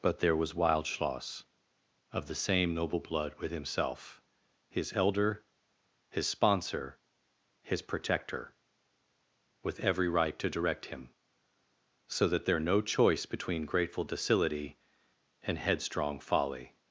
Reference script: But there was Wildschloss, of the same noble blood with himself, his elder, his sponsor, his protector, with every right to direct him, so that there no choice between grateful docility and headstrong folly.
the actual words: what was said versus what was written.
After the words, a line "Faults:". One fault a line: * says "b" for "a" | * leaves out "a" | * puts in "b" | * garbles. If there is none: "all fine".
But there was Wildschloss, of the same noble blood with himself, his elder, his sponsor, his protector, with every right to direct him, so that there no choice between grateful docility and headstrong folly.
Faults:
all fine